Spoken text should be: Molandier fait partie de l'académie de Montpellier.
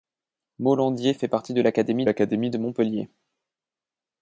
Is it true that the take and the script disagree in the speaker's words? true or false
true